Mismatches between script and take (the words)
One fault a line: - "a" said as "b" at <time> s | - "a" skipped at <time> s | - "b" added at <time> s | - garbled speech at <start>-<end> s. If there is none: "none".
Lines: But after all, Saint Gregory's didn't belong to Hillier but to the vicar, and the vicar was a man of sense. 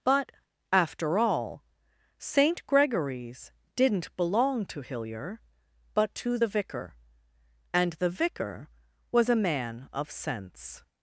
none